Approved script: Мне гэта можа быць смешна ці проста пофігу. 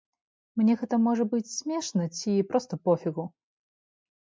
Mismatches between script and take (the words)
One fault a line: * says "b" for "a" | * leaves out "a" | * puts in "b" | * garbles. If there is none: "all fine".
all fine